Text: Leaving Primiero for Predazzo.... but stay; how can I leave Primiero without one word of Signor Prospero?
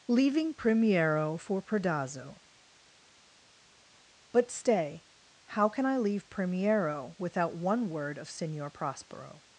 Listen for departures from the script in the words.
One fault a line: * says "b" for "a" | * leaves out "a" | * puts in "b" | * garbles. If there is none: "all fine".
all fine